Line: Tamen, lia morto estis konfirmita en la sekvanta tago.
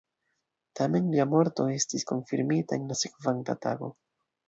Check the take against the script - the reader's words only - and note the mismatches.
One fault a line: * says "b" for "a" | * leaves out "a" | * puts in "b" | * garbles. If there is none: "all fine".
all fine